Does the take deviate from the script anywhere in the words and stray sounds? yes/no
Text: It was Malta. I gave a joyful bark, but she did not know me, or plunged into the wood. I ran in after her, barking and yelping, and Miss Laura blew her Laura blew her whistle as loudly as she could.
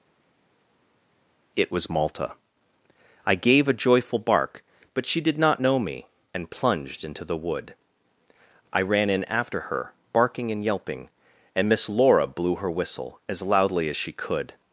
yes